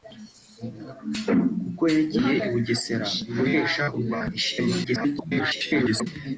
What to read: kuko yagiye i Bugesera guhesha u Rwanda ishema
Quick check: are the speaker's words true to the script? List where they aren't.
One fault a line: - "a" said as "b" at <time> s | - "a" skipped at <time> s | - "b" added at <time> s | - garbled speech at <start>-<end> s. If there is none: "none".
- garbled speech at 4.8-6.1 s